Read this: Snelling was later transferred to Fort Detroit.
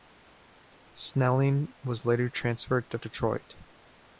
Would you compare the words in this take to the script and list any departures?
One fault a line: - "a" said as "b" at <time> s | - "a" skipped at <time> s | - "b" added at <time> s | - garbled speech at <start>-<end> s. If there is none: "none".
- "Fort" skipped at 3.0 s